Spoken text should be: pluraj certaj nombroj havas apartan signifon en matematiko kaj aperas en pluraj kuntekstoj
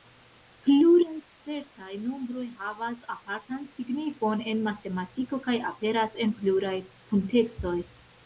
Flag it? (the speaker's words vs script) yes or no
no